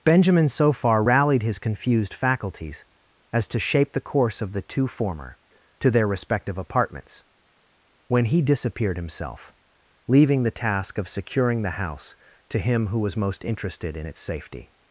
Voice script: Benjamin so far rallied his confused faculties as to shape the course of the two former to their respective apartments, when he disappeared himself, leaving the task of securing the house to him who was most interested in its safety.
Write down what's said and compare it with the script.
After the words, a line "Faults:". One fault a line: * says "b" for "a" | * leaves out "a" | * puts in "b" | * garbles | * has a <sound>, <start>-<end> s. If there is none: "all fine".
Benjamin so far rallied his confused faculties as to shape the course of the two former to their respective apartments, when he disappeared himself, leaving the task of securing the house to him who was most interested in its safety.
Faults:
all fine